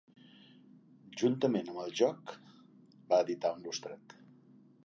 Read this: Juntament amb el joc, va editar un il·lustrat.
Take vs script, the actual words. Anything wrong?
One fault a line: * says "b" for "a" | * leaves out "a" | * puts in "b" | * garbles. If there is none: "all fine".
all fine